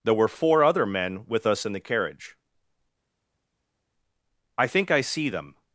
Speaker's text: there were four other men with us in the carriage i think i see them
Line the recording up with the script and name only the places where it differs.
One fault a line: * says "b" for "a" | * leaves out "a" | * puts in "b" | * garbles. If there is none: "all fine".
all fine